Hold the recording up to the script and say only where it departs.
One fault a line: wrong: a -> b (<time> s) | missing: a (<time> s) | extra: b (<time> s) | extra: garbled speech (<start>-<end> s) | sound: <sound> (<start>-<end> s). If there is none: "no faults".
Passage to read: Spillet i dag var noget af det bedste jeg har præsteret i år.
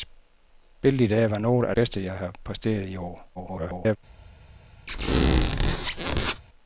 missing: det (1.8 s)
extra: garbled speech (3.3-4.0 s)
sound: squeak (4.9-6.4 s)